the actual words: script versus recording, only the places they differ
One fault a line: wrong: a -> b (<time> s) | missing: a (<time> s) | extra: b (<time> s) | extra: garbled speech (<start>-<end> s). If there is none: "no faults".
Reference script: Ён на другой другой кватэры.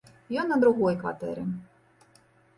missing: другой (1.0 s)